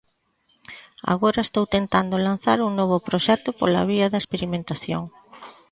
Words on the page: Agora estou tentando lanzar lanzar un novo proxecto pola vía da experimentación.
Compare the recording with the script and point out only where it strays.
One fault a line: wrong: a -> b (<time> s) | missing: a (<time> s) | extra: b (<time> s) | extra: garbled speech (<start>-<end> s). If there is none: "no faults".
missing: lanzar (2.6 s)